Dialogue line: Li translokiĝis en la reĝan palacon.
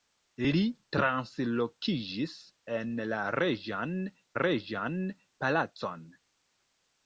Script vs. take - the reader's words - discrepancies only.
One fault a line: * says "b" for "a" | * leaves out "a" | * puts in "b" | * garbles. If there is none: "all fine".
* puts in "reĝan"